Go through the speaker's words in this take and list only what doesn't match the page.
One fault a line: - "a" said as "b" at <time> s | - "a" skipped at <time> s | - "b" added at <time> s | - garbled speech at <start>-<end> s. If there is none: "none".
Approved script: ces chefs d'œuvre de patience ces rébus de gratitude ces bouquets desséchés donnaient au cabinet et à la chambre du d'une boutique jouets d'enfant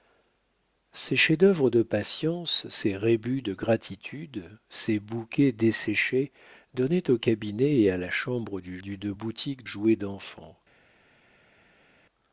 none